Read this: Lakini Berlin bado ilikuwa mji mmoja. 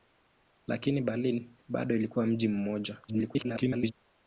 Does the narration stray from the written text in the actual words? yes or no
yes